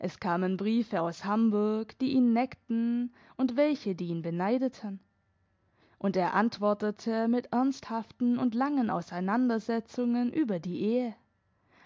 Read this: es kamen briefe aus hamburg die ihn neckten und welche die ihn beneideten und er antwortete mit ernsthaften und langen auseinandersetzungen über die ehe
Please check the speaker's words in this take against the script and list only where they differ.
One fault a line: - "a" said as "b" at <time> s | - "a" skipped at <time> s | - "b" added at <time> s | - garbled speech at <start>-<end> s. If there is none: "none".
none